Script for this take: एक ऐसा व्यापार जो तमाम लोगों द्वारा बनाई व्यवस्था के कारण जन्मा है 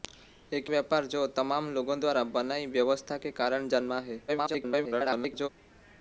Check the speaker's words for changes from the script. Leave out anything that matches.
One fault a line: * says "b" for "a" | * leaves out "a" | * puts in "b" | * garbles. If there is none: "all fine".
* leaves out "ऐसा"
* garbles